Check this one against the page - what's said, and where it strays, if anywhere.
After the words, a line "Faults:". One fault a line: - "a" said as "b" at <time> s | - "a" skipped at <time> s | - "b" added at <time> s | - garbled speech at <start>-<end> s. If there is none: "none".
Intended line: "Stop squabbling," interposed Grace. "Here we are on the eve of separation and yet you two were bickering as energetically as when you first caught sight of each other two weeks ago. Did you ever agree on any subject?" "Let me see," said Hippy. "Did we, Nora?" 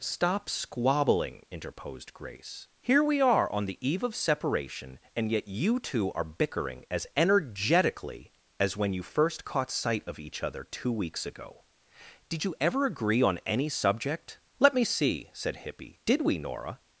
"Stop squabbling," interposed Grace. "Here we are on the eve of separation and yet you two are bickering as energetically as when you first caught sight of each other two weeks ago. Did you ever agree on any subject?" "Let me see," said Hippy. "Did we, Nora?"
Faults:
- "were" said as "are" at 6.1 s